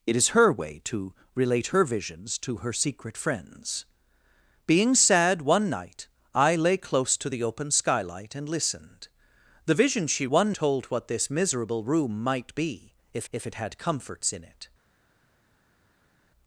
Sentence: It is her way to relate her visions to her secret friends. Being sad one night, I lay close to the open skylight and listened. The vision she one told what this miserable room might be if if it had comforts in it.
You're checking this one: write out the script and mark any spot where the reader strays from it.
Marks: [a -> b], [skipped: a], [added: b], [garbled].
It is her way to relate her visions to her secret friends. Being sad one night, I lay close to the open skylight and listened. The vision she one told what this miserable room might be if if it had comforts in it.